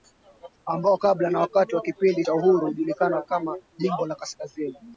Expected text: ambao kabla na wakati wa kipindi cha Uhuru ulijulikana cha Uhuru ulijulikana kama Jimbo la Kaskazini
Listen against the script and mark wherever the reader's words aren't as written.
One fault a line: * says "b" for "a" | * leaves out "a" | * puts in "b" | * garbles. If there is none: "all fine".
* leaves out "cha Uhuru ulijulikana"